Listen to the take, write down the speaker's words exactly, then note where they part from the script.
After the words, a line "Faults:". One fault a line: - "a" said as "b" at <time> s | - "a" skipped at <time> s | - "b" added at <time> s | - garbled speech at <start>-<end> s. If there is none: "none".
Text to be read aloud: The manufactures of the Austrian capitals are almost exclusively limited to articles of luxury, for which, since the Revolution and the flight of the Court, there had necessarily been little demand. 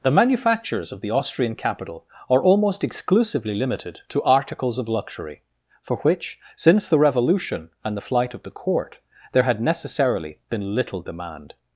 The manufactures of the Austrian capital are almost exclusively limited to articles of luxury, for which, since the Revolution and the flight of the Court, there had necessarily been little demand.
Faults:
- "capitals" said as "capital" at 1.6 s